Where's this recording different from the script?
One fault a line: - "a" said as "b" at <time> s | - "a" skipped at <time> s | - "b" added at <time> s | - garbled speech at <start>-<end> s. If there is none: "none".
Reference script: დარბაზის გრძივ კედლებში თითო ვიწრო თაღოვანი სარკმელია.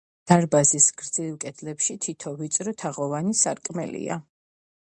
none